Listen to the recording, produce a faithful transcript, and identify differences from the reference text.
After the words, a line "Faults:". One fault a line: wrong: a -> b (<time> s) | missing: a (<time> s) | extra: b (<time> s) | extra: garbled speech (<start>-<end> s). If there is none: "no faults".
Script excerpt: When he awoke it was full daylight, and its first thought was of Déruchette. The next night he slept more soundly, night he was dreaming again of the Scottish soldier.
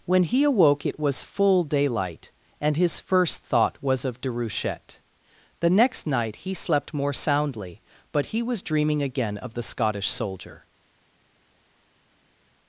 When he awoke it was full daylight, and his first thought was of Déruchette. The next night he slept more soundly, but he was dreaming again of the Scottish soldier.
Faults:
wrong: its -> his (2.8 s)
wrong: night -> but (8.1 s)